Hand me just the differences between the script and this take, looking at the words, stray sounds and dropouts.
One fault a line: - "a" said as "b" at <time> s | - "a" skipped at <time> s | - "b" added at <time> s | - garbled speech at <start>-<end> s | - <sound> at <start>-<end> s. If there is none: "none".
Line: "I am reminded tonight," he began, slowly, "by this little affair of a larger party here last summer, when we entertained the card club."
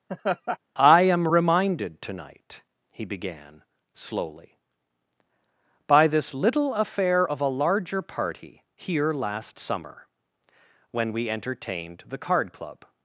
- laugh at 0.1-0.6 s